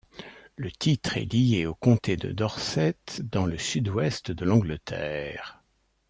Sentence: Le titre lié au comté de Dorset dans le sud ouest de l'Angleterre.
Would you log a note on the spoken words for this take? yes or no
yes